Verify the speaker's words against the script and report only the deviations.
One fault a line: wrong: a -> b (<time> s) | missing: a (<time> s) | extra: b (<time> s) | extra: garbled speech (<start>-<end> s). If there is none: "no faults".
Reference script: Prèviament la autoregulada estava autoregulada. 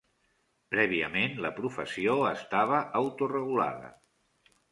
wrong: autoregulada -> professió (1.6 s)